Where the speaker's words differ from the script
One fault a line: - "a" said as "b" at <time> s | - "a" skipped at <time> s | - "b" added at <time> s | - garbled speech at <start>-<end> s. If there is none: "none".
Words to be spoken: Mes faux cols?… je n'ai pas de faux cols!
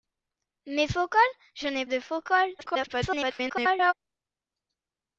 - "pas" skipped at 1.9 s
- garbled speech at 2.6-3.9 s